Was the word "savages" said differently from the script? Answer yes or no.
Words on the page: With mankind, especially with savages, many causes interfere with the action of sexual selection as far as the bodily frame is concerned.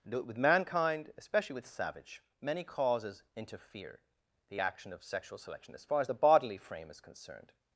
yes